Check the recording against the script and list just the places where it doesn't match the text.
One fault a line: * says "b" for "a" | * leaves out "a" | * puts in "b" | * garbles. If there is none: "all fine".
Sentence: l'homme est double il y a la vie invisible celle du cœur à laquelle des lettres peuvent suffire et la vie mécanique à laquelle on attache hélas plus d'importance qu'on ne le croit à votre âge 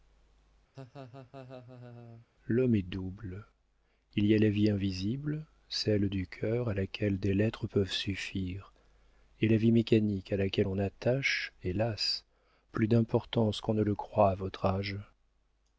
all fine